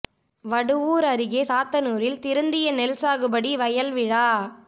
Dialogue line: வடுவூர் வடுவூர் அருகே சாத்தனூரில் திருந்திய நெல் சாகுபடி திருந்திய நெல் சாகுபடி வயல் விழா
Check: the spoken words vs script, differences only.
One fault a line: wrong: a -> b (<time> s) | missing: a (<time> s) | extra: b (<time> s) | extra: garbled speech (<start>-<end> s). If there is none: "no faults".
missing: வடுவூர் (1.1 s)
missing: திருந்திய நெல் சாகுபடி (3.5 s)